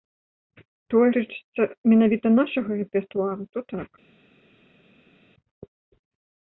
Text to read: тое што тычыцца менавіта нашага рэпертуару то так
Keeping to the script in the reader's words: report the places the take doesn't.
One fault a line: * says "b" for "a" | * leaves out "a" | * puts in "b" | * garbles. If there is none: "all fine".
* leaves out "што"